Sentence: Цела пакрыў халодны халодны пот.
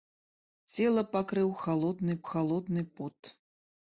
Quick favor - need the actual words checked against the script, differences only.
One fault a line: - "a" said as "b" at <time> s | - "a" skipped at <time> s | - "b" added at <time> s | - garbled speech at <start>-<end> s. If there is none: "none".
none